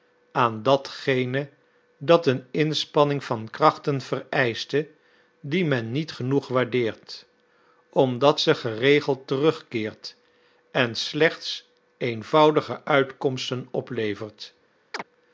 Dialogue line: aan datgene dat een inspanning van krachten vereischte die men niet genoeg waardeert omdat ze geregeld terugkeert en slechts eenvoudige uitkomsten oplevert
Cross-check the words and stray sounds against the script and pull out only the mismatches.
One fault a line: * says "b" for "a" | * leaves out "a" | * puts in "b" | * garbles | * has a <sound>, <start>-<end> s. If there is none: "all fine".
* has a chirp, 14.9-15.0 s